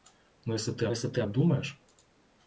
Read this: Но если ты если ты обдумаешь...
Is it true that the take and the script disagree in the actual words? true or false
false